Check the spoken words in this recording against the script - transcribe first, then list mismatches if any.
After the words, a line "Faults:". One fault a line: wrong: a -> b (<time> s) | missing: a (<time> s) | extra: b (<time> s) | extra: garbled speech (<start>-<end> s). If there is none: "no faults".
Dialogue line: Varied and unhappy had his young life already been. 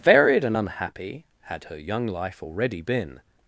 Varied and unhappy had her young life already been.
Faults:
wrong: his -> her (1.6 s)